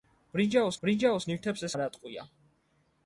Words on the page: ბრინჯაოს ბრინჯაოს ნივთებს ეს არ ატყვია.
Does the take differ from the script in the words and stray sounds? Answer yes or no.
no